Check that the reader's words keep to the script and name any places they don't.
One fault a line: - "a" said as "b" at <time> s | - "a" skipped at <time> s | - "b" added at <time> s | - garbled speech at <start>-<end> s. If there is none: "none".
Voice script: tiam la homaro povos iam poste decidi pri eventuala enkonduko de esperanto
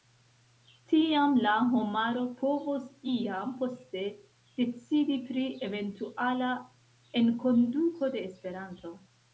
none